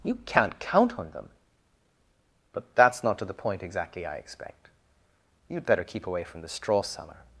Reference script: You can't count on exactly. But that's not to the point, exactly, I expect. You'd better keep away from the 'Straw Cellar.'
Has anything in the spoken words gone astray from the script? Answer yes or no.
yes